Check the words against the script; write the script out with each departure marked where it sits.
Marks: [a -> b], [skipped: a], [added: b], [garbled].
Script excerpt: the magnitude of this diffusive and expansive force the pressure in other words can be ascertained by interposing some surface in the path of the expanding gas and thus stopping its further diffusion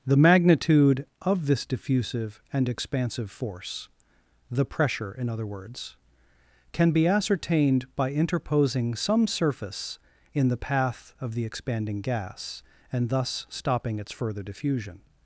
the magnitude of this diffusive and expansive force the pressure in other words can be ascertained by interposing some surface in the path of the expanding gas and thus stopping its further diffusion